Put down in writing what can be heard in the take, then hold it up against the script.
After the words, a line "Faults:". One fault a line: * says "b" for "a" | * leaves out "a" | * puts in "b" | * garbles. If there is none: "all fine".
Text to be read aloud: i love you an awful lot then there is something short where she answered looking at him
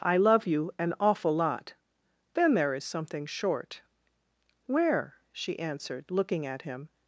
i love you an awful lot then there is something short where she answered looking at him
Faults:
all fine